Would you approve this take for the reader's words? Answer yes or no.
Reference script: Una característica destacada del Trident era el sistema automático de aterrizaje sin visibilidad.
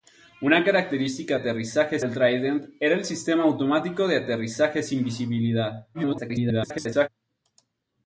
no